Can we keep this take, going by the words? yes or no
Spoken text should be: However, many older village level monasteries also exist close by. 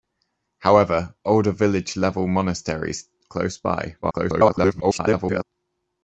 no